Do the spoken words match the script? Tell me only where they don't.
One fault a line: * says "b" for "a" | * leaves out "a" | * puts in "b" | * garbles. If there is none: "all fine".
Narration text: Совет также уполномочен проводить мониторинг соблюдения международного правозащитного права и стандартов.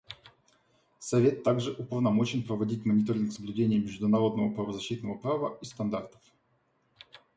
all fine